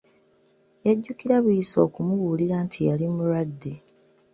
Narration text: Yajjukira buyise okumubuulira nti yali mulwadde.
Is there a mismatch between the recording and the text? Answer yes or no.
no